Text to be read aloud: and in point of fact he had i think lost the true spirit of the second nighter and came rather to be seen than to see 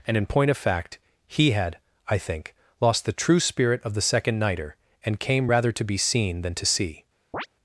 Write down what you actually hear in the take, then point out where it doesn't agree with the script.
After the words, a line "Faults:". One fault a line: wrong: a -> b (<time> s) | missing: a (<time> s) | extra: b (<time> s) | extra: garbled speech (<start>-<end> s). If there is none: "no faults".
and in point of fact he had i think lost the true spirit of the second nighter and came rather to be seen than to see
Faults:
no faults